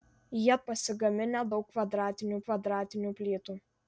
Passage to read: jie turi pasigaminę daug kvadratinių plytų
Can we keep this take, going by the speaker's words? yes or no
no